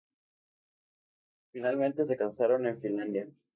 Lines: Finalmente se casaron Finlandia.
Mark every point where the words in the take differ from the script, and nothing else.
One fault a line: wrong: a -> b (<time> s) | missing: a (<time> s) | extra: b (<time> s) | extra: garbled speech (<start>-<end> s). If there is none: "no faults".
extra: en (2.7 s)